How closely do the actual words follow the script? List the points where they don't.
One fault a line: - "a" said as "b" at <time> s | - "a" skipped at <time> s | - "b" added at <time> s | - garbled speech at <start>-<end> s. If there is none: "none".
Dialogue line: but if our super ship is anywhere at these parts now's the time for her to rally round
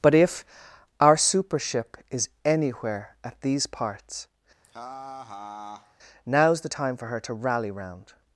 none